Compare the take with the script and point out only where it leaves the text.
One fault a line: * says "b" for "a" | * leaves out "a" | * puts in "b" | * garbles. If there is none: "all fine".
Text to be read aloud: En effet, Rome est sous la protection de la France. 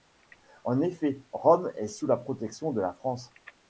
all fine